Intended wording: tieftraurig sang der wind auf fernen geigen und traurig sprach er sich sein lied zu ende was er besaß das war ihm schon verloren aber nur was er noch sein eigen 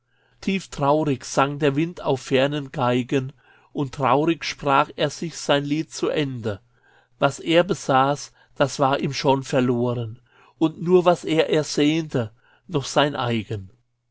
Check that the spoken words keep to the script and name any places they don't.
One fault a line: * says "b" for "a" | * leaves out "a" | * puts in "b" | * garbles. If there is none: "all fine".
* says "und" for "aber"
* puts in "ersehnte"